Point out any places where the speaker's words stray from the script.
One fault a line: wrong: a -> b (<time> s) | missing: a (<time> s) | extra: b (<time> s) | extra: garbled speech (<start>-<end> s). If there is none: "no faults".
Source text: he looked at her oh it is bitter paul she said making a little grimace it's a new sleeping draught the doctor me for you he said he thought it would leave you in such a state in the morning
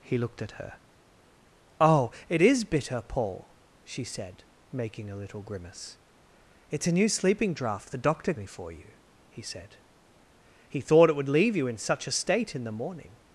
no faults